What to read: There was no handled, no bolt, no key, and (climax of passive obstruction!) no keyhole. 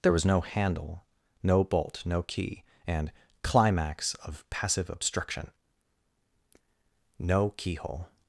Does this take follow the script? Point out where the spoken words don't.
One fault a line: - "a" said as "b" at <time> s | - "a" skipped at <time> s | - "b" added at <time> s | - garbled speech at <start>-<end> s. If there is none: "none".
- "handled" said as "handle" at 0.4 s